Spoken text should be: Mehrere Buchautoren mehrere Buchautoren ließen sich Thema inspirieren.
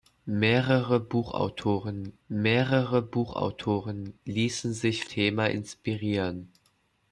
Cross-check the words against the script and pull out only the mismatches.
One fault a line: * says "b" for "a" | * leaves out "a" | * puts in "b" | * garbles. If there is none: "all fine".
all fine